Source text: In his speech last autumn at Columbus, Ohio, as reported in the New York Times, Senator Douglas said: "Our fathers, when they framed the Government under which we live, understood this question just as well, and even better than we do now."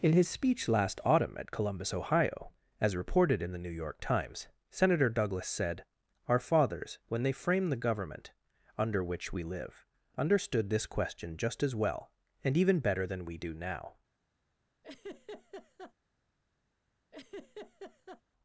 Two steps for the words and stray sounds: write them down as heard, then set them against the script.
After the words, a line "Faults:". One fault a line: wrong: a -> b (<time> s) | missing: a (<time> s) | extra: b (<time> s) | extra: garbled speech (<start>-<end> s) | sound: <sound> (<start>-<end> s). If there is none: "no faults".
In his speech last autumn at Columbus, Ohio, as reported in the New York Times, Senator Douglas said: "Our fathers, when they framed the Government under which we live, understood this question just as well, and even better than we do now."
Faults:
sound: laugh (14.8-15.9 s)
sound: laugh (17.1-18.2 s)